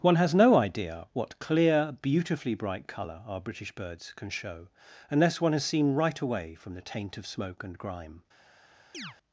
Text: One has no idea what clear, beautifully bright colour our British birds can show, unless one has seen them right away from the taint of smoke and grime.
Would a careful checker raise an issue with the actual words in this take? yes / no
yes